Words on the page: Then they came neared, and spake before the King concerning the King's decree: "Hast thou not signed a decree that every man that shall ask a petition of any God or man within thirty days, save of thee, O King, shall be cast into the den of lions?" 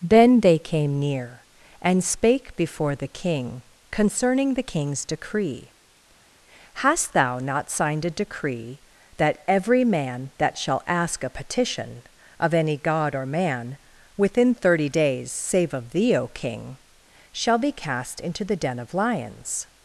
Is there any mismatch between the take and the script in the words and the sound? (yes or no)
yes